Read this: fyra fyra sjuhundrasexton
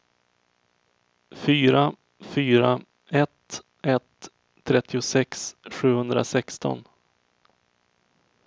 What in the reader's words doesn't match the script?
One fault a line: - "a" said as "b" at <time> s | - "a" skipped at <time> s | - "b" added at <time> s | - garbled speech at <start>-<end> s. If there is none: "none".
- "ett ett trettiosex" added at 3.1 s